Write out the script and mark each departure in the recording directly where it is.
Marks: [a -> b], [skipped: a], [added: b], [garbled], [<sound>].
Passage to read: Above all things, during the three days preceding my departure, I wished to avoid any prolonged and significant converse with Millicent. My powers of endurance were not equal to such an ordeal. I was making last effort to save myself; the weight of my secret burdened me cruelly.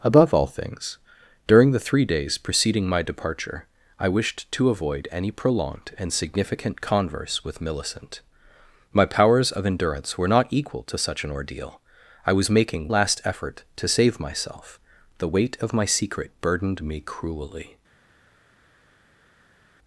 Above all things, during the three days preceding my departure, I wished to avoid any prolonged and significant converse with Millicent. My powers of endurance were not equal to such an ordeal. I was making last effort to save myself; the weight of my secret burdened me cruelly.